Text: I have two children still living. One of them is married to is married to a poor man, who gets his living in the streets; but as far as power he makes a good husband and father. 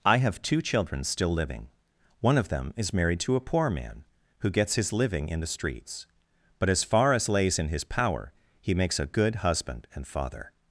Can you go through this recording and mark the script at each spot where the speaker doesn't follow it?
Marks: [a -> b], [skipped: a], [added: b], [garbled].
I have two children still living. One of them is married to [skipped: is married to] a poor man, who gets his living in the streets; but as far as [added: lays in his] power he makes a good husband and father.